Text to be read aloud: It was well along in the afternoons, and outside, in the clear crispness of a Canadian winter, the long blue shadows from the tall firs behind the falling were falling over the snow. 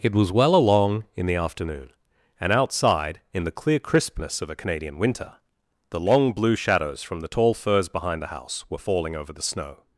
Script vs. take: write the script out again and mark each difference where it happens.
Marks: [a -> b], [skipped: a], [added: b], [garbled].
It was well along in the [afternoons, -> afternoon] and outside, in the clear crispness of a Canadian winter, the long blue shadows from the tall firs behind the [falling -> house] were falling over the snow.